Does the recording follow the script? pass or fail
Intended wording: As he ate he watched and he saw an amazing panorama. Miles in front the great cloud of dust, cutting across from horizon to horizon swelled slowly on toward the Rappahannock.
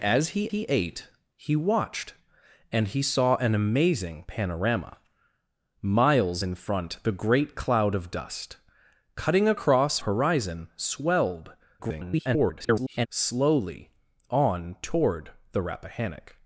fail